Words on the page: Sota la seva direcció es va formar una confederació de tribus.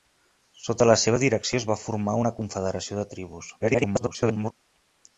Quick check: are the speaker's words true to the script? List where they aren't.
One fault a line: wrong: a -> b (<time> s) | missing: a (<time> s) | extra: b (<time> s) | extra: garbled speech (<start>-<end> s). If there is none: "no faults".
extra: garbled speech (3.6-4.5 s)